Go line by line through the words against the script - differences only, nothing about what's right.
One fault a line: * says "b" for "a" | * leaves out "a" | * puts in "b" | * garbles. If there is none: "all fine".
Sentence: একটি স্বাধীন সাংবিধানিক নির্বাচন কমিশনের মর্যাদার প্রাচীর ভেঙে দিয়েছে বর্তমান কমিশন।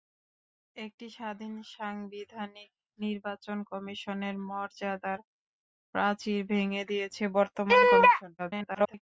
* garbles